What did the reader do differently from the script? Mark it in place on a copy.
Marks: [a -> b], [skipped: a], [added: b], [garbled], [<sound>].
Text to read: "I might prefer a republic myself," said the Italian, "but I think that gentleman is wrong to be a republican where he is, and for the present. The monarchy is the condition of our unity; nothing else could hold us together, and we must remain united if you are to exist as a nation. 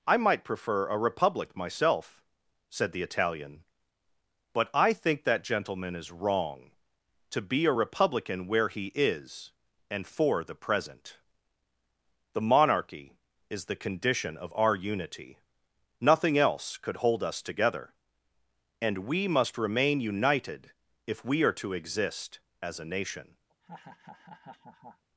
"I might prefer a republic myself," said the Italian, "but I think that gentleman is wrong to be a republican where he is, and for the present. The monarchy is the condition of our unity; nothing else could hold us together, and we must remain united if [you -> we] are to exist as a nation. [laugh]